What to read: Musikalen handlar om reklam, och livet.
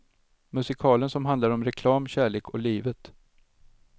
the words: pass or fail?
fail